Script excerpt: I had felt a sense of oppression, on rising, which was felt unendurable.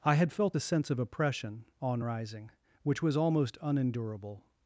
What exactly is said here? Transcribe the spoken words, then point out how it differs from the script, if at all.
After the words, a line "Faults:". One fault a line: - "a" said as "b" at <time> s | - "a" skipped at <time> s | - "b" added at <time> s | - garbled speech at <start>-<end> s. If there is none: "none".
I had felt a sense of oppression, on rising, which was almost unendurable.
Faults:
- "felt" said as "almost" at 3.2 s